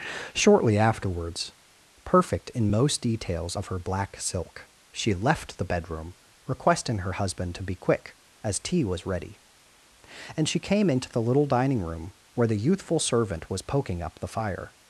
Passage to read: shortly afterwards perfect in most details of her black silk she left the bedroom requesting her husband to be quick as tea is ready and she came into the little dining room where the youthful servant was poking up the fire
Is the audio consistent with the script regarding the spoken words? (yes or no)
no